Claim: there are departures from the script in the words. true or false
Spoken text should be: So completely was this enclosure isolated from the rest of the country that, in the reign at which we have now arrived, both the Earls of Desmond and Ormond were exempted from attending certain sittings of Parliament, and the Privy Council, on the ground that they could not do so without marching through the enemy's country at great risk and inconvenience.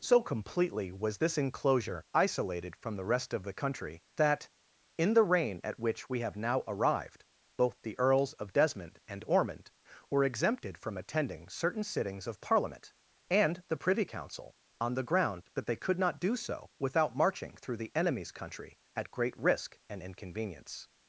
false